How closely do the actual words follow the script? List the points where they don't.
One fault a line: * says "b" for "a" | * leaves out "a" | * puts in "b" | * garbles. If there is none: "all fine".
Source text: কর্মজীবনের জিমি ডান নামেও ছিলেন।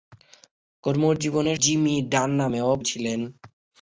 all fine